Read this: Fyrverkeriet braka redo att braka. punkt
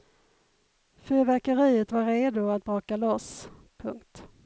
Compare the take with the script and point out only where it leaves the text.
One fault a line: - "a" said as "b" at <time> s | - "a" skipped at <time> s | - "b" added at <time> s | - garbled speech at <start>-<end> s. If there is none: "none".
- "braka" said as "var" at 1.9 s
- "loss" added at 3.0 s